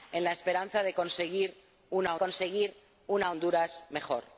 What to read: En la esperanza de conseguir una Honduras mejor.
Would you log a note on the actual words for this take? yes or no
yes